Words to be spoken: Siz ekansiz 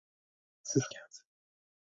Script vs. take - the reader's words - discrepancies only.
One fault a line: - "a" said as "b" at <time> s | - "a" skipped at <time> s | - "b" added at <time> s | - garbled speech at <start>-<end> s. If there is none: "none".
none